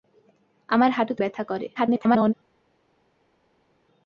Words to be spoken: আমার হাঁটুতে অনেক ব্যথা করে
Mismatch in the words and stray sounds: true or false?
true